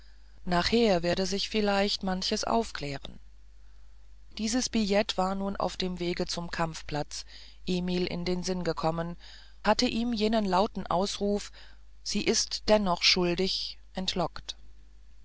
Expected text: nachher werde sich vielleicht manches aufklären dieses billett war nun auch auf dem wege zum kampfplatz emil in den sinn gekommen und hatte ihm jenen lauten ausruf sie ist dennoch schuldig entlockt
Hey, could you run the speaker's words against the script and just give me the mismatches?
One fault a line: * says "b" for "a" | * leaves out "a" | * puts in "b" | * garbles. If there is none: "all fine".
* leaves out "auch"
* leaves out "und"